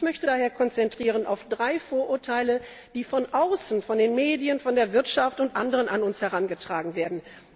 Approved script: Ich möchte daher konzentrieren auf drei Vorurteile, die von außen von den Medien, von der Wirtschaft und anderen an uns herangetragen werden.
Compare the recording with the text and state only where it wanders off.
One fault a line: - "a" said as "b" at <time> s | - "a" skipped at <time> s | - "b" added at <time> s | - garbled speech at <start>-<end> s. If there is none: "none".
none